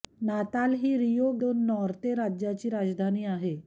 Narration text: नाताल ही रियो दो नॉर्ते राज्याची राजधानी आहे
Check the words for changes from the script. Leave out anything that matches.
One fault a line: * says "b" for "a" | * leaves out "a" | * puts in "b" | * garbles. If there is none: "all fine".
all fine